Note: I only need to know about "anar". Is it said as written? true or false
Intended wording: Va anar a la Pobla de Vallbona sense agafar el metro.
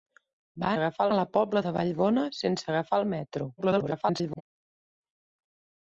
false